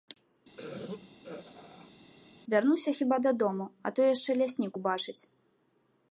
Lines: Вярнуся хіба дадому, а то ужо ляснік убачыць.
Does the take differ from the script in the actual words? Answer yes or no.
yes